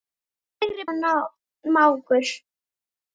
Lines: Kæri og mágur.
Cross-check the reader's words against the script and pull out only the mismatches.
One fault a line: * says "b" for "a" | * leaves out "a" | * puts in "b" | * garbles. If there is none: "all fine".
all fine